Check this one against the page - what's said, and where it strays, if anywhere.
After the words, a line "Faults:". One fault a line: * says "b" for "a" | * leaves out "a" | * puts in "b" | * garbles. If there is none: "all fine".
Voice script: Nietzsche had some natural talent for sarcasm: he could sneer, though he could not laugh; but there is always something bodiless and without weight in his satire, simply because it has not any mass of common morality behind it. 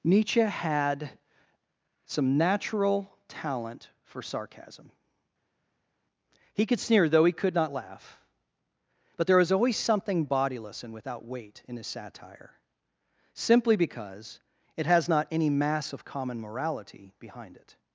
Nietzsche had some natural talent for sarcasm: he could sneer, though he could not laugh; but there was always something bodiless and without weight in his satire, simply because it has not any mass of common morality behind it.
Faults:
* says "was" for "is"